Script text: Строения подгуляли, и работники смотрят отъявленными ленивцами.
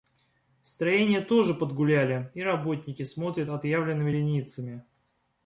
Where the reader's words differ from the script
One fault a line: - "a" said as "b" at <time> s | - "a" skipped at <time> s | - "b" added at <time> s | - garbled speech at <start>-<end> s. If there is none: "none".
- "тоже" added at 1.2 s